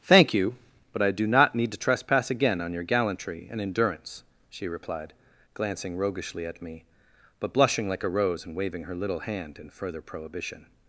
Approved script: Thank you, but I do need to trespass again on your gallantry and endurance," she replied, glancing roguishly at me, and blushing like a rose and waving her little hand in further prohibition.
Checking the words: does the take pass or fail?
fail